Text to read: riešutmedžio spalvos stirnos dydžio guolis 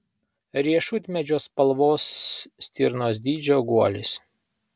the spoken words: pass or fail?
pass